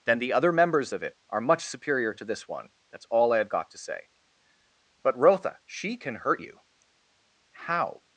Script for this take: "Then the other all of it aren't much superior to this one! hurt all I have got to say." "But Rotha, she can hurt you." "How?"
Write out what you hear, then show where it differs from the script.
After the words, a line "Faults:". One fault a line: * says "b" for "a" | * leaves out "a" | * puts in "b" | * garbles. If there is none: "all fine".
"Then the other members of it are much superior to this one! that's all I have got to say." "But Rotha, she can hurt you." "How?"
Faults:
* says "members" for "all"
* says "are" for "aren't"
* says "that's" for "hurt"